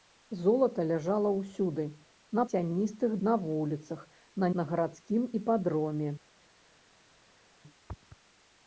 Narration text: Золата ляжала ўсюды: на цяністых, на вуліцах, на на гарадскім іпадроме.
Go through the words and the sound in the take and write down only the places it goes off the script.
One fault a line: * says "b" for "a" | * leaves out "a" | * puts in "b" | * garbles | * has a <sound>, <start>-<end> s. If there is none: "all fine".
all fine